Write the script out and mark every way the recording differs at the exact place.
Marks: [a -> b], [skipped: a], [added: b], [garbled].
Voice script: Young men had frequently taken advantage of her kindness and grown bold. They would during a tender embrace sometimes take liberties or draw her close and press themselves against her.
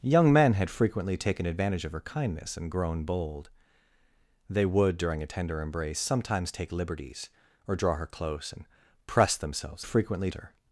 Young men had frequently taken advantage of her kindness and grown bold. They would during a tender embrace sometimes take liberties or draw her close and press themselves [against -> frequently] her.